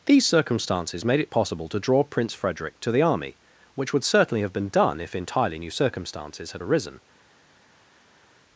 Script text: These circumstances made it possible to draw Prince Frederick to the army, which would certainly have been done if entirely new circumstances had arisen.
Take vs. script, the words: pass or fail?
pass